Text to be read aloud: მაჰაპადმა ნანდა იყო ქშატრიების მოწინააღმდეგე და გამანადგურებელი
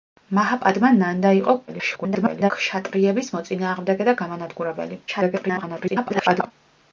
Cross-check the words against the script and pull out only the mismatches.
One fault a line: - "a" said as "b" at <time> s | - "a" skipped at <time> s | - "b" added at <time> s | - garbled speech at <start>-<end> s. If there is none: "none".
- garbled speech at 1.7-2.5 s
- garbled speech at 5.1-6.5 s